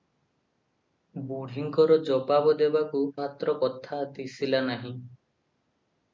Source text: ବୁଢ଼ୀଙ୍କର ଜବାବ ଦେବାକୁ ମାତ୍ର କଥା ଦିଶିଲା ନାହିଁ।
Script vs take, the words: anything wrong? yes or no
no